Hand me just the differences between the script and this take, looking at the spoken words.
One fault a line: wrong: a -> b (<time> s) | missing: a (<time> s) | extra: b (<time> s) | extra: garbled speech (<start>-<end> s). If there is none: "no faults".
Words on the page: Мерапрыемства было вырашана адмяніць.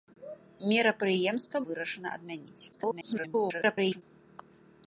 missing: было (1.6 s)
extra: garbled speech (2.7-4.0 s)